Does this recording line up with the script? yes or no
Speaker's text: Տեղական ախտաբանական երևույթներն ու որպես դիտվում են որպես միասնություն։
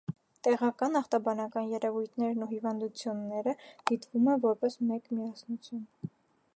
no